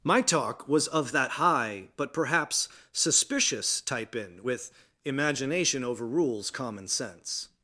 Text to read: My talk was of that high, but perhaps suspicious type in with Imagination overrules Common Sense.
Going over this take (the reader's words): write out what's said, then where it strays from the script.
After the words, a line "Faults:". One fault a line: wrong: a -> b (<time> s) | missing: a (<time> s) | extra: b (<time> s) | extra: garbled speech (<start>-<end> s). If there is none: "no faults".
My talk was of that high, but perhaps suspicious type in with Imagination overrules Common Sense.
Faults:
no faults